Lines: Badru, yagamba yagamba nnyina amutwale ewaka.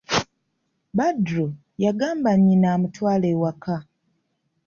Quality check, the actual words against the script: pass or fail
fail